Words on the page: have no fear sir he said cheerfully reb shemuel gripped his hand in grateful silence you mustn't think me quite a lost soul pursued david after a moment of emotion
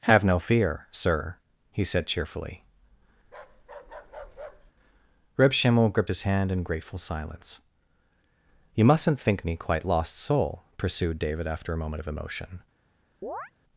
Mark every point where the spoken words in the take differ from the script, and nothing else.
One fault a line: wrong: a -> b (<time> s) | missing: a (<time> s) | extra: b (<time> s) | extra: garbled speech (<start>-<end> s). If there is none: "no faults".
missing: a (9.9 s)